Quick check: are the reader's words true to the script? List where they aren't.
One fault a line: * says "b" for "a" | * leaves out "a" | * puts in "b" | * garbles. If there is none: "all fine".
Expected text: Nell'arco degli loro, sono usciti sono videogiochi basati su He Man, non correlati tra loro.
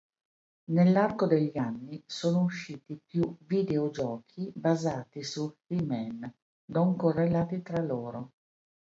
* says "anni" for "loro"
* says "più" for "sono"